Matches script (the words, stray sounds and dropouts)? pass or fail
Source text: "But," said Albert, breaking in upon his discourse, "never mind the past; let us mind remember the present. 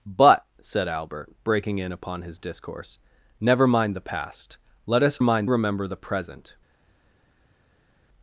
pass